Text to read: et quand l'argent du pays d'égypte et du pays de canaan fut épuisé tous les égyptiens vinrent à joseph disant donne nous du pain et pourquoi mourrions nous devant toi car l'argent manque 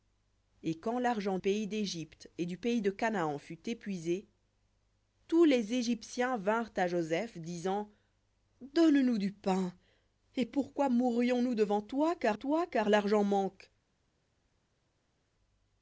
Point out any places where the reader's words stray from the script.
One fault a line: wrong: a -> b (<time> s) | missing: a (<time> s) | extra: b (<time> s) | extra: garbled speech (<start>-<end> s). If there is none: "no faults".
missing: du (1.4 s)
extra: toi car (12.3 s)